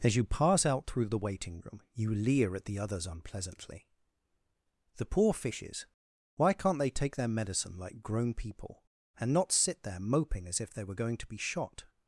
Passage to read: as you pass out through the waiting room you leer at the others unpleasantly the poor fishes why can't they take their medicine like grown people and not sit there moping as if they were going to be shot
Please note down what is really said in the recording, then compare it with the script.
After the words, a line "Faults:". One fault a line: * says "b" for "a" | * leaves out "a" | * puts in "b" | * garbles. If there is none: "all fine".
as you pass out through the waiting room you leer at the others unpleasantly the poor fishes why can't they take their medicine like grown people and not sit there moping as if they were going to be shot
Faults:
all fine